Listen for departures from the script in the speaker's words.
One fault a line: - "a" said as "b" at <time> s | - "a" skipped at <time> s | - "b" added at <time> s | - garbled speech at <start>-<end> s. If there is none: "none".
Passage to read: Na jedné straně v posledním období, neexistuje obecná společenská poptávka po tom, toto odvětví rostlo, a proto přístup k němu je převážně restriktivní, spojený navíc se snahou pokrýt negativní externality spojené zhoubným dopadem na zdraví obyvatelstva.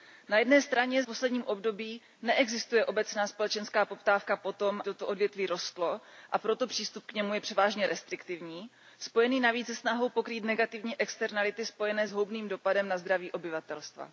none